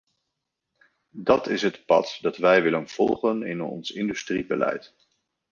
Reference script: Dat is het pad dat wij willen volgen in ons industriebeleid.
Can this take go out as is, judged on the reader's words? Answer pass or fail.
pass